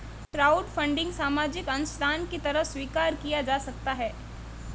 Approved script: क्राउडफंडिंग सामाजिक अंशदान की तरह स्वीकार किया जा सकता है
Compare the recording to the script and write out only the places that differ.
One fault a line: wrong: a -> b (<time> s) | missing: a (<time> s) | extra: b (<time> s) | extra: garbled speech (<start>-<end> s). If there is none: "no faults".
no faults